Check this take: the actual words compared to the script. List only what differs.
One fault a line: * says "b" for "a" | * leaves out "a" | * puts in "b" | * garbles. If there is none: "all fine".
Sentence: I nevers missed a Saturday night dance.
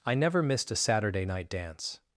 * says "never" for "nevers"